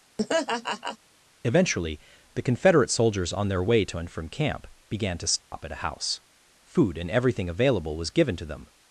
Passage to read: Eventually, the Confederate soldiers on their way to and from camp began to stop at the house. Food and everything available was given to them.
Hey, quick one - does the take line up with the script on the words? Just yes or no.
no